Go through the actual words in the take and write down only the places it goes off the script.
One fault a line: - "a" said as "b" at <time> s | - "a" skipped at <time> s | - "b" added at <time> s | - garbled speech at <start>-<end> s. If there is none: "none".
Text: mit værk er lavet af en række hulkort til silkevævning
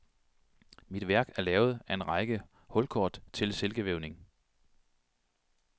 none